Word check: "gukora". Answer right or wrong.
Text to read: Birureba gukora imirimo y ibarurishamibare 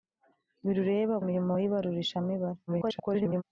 wrong